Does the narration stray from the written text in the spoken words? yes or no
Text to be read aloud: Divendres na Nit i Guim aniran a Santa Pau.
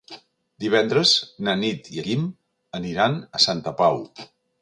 no